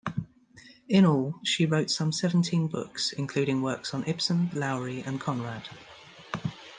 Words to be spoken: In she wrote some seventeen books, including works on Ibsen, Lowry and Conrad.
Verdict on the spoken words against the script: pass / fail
fail